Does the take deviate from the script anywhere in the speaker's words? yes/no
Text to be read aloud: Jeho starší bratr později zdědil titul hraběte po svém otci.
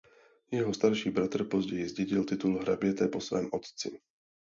no